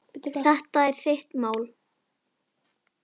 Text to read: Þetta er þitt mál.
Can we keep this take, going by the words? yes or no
yes